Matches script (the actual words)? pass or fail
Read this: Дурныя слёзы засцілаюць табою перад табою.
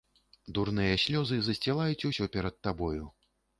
fail